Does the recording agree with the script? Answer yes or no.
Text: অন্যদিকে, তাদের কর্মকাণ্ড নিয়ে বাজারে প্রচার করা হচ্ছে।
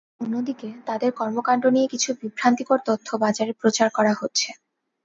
no